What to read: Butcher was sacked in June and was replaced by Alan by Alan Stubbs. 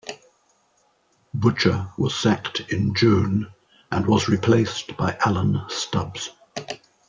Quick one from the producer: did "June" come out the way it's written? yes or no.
yes